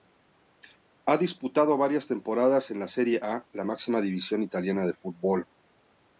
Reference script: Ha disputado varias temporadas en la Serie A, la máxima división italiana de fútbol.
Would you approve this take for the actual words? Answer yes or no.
yes